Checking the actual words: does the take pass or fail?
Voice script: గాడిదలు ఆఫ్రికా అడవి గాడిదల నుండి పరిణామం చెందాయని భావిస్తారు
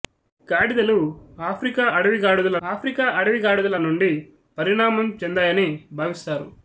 fail